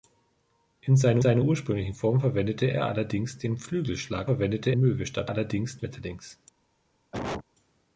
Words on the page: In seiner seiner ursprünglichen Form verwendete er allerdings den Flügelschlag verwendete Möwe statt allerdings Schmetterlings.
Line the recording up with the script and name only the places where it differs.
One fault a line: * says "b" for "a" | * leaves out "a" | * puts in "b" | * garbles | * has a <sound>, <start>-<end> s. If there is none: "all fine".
* has a cough, 7.1-7.4 s